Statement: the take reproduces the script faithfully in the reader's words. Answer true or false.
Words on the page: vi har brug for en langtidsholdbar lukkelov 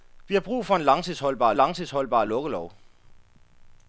false